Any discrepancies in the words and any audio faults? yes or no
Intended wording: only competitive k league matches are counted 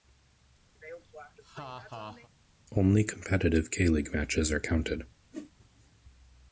yes